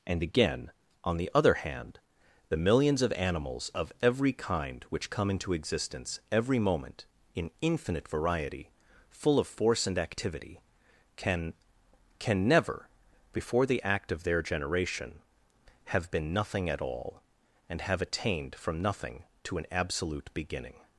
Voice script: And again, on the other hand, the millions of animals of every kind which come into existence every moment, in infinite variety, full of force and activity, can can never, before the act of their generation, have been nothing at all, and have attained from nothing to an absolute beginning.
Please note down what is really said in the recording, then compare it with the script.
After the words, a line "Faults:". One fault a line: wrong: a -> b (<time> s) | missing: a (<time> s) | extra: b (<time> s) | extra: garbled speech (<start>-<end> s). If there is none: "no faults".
And again, on the other hand, the millions of animals of every kind which come into existence every moment, in infinite variety, full of force and activity, can can never, before the act of their generation, have been nothing at all, and have attained from nothing to an absolute beginning.
Faults:
no faults